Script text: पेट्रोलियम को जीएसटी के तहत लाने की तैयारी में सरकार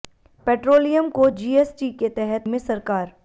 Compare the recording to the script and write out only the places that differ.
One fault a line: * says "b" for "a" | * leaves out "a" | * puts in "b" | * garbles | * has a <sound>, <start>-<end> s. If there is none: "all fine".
* leaves out "लाने की तैयारी"